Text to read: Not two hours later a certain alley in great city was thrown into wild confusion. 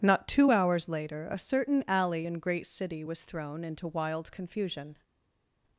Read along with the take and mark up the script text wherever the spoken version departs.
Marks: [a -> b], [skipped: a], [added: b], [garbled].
Not two hours later a certain alley in great city was thrown into wild confusion.